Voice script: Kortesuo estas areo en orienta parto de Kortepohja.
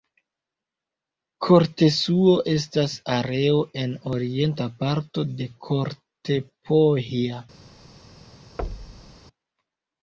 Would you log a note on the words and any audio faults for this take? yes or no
yes